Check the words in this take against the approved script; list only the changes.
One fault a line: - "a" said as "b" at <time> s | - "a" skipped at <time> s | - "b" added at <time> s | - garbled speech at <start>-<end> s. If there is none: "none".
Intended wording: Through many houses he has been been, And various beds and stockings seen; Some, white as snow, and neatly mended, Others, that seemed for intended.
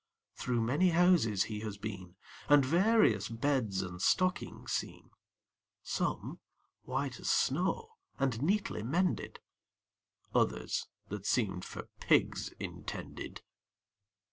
- "been" skipped at 2.1 s
- "pigs" added at 12.0 s